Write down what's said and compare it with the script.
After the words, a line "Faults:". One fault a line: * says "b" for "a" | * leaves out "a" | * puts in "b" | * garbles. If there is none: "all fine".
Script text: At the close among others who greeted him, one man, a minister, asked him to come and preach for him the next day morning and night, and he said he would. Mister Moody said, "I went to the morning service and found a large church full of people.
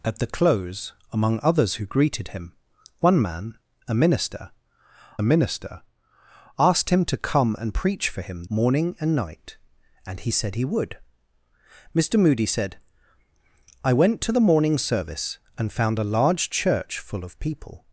At the close among others who greeted him, one man, a minister minister, asked him to come and preach for him morning and night, and he said he would. Mister Moody said, "I went to the morning service and found a large church full of people.
Faults:
* puts in "minister"
* leaves out "the next day"